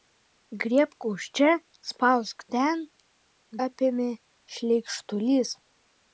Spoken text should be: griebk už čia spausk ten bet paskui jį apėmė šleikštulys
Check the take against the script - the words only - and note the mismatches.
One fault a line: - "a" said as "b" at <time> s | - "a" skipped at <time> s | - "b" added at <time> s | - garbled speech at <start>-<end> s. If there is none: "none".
- "bet paskui jį" skipped at 2.8 s